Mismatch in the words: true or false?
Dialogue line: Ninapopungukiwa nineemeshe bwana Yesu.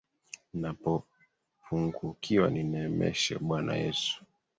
false